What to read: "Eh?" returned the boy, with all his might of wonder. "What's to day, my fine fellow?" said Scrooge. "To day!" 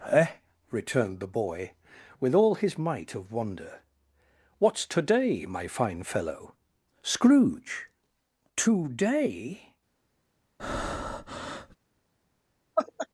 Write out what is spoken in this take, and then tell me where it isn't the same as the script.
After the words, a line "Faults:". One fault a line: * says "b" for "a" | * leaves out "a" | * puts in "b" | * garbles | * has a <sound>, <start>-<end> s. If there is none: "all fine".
"Eh?" returned the boy, with all his might of wonder. "What's to day, my fine fellow?" Scrooge. "To day!"
Faults:
* leaves out "said"
* has a breath, 10.6-11.8 s
* has a laugh, 12.8-13.1 s